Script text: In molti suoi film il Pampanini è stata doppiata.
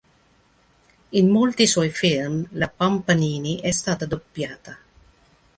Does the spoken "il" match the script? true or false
false